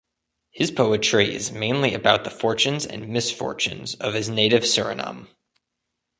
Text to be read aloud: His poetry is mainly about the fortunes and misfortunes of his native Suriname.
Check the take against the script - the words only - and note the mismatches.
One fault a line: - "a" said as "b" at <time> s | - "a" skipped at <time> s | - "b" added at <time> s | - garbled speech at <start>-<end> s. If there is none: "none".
none